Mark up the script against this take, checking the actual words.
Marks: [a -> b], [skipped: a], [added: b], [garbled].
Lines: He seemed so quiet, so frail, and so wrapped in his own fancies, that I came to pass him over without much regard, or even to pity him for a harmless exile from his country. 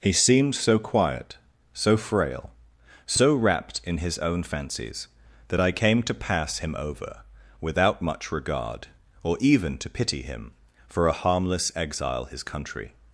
He seemed so quiet, so frail, [skipped: and] so wrapped in his own fancies, that I came to pass him over without much regard, or even to pity him for a harmless exile [skipped: from] his country.